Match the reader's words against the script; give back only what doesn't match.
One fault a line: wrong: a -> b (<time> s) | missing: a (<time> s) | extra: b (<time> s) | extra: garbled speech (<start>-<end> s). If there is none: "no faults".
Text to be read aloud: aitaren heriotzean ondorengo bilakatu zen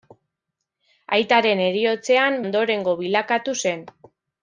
no faults